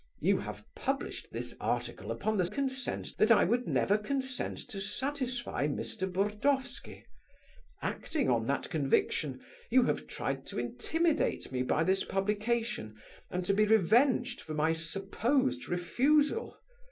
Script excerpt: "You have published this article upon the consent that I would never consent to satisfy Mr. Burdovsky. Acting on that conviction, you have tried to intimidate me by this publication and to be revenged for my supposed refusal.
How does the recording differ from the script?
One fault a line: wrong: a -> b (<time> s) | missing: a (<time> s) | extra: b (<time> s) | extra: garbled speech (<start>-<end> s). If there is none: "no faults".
no faults